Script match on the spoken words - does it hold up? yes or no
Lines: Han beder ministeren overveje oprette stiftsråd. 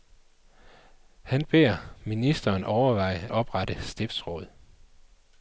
yes